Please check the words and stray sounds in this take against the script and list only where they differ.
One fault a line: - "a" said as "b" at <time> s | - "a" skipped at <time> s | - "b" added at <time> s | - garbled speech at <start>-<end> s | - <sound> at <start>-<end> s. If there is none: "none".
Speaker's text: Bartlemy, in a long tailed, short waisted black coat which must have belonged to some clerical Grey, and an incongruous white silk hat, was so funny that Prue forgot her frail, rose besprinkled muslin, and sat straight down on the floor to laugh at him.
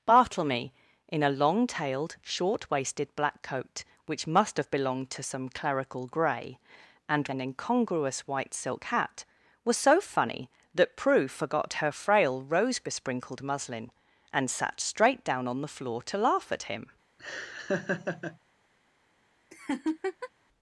- laugh at 17.2-18.4 s
- laugh at 19.5-20.3 s